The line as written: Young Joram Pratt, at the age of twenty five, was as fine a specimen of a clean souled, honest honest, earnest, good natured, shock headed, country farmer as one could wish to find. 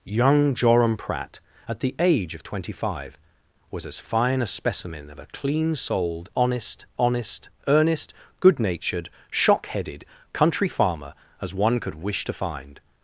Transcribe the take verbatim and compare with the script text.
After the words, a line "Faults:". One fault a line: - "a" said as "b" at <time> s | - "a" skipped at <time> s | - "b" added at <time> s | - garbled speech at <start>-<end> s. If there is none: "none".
Young Joram Pratt, at the age of twenty five, was as fine a specimen of a clean souled, honest honest, earnest, good natured, shock headed, country farmer as one could wish to find.
Faults:
none